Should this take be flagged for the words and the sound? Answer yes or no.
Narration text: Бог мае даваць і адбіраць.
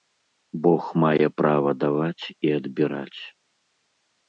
yes